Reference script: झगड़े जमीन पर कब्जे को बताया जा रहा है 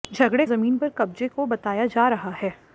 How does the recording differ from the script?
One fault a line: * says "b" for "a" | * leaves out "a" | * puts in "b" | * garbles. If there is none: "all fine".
all fine